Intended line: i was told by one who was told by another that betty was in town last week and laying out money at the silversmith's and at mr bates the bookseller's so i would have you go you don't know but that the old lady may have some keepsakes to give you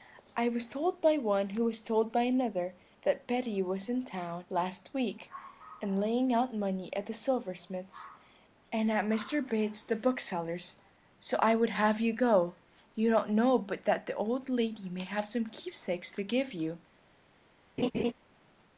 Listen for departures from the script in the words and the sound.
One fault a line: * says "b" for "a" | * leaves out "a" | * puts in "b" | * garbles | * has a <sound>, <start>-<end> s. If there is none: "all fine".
* has a laugh, 17.8-18.1 s